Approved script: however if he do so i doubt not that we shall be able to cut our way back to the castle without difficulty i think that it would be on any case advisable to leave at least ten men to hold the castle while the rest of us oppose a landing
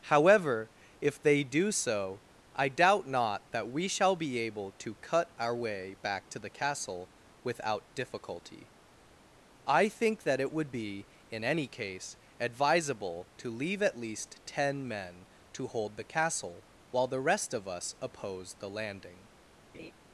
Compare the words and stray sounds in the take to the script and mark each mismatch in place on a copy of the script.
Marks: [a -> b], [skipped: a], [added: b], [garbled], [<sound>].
however if [he -> they] do so i doubt not that we shall be able to cut our way back to the castle without difficulty i think that it would be [on -> in] any case advisable to leave at least ten men to hold the castle while the rest of us oppose [a -> the] landing [laugh]